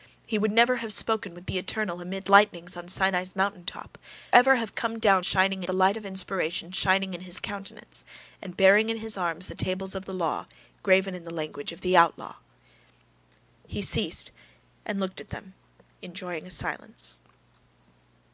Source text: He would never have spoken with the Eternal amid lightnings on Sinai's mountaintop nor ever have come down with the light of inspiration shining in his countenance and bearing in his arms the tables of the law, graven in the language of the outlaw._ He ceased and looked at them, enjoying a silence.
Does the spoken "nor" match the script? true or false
false